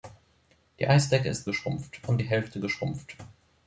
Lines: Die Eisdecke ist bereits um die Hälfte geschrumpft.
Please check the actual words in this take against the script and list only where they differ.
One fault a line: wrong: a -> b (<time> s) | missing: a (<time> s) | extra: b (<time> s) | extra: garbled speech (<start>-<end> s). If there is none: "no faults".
wrong: bereits -> geschrumpft (1.4 s)